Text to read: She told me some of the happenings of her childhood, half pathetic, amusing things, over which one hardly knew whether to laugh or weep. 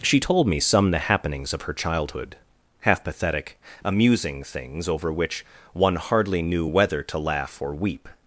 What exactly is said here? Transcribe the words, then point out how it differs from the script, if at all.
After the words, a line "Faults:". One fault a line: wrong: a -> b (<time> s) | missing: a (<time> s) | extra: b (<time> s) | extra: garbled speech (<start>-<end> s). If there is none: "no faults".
She told me some the happenings of her childhood, half pathetic, amusing things, over which one hardly knew whether to laugh or weep.
Faults:
missing: of (0.9 s)